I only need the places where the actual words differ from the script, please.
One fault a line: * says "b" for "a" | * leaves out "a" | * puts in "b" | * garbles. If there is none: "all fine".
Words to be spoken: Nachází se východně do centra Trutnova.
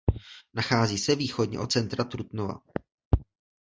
* says "od" for "do"